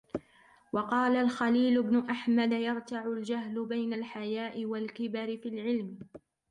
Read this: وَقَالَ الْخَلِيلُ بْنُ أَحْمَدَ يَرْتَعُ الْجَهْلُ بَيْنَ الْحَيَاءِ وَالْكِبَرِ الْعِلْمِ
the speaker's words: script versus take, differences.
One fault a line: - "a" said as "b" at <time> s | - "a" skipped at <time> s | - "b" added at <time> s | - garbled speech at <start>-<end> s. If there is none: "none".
- "فِي" added at 5.4 s